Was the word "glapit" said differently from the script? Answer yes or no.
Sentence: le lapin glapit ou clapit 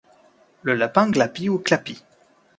no